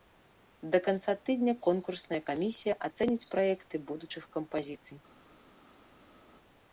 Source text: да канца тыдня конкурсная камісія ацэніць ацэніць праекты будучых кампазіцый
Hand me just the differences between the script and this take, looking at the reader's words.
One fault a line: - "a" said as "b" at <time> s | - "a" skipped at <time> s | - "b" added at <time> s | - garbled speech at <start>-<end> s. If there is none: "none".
- "ацэніць" skipped at 3.3 s